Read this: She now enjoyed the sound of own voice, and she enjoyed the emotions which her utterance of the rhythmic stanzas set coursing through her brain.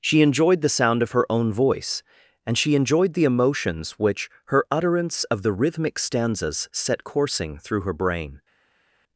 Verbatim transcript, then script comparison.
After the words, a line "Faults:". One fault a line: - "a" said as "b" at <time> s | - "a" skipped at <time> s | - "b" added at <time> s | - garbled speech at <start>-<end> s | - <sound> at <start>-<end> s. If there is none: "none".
She enjoyed the sound of her own voice, and she enjoyed the emotions which her utterance of the rhythmic stanzas set coursing through her brain.
Faults:
- "now" skipped at 0.2 s
- "her" added at 1.1 s